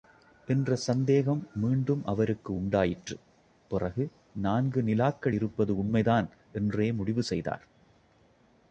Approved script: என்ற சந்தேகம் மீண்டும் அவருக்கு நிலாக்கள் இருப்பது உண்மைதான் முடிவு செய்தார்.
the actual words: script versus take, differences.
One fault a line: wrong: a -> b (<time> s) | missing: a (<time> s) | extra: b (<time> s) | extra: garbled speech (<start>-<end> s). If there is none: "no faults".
extra: உண்டாயிற்று பிறகு நான்கு (2.5 s)
extra: என்றே (6.5 s)